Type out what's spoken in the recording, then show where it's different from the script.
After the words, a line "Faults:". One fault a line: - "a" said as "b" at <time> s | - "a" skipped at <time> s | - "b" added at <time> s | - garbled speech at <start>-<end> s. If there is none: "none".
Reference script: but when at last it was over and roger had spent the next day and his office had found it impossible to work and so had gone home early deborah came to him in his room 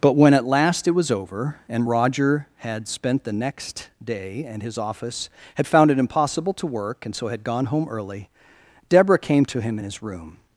but when at last it was over and roger had spent the next day and his office had found it impossible to work and so had gone home early deborah came to him in his room
Faults:
none